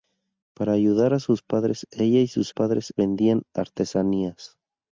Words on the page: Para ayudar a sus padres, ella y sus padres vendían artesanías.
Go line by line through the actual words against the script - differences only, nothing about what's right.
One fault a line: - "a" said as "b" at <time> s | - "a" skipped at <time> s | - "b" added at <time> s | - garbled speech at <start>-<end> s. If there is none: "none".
none